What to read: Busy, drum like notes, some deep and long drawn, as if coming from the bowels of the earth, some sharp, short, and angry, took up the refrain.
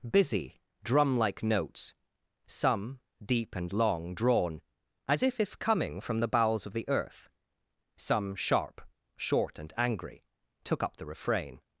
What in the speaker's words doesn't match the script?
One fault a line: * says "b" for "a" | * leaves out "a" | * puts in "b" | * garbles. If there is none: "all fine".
* puts in "if"